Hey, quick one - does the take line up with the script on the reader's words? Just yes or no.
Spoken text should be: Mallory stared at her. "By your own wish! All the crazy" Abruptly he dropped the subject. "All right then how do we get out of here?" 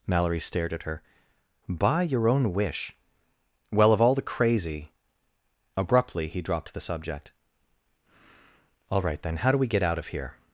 no